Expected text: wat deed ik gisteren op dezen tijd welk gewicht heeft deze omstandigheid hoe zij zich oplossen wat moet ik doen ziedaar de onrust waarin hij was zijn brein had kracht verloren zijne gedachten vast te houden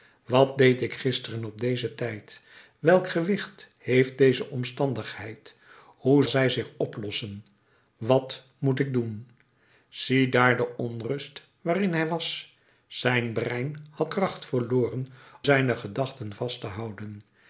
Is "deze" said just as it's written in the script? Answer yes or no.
yes